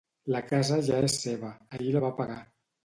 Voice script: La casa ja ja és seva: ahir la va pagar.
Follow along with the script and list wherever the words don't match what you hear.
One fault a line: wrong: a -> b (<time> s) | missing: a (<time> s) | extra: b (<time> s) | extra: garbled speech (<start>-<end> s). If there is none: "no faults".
missing: ja (1.0 s)